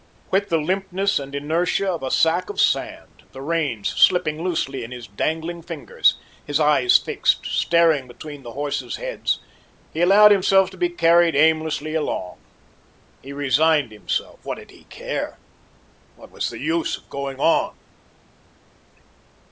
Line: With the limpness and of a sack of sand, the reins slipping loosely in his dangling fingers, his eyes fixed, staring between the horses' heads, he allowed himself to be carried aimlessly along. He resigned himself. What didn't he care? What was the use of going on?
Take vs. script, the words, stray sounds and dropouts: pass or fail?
fail